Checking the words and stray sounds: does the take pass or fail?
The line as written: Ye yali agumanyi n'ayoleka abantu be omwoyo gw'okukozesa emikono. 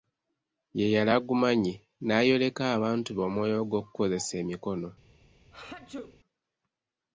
fail